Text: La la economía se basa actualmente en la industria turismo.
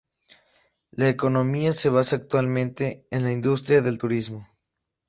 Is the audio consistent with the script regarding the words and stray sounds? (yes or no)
no